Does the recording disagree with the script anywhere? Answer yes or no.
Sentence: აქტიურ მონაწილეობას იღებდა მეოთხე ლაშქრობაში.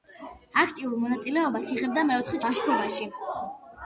no